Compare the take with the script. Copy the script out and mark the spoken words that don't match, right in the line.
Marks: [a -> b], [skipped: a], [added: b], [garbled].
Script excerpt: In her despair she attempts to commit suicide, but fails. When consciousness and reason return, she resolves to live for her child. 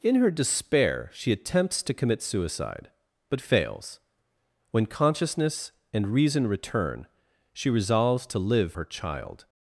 In her despair she attempts to commit suicide, but fails. When consciousness and reason return, she resolves to live [skipped: for] her child.